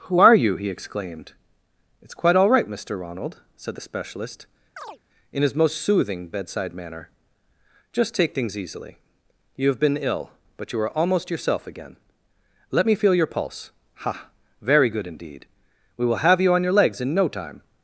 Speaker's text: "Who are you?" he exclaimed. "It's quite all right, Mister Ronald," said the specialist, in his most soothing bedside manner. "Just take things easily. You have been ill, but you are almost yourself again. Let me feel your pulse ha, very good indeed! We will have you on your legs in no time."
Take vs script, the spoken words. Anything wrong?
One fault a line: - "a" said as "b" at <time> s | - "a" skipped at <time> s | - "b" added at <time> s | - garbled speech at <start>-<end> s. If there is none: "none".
none